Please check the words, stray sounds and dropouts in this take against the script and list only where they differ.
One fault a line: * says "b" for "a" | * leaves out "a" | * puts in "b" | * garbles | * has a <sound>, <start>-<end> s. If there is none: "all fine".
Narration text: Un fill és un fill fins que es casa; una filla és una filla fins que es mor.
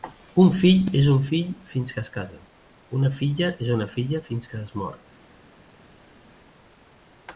all fine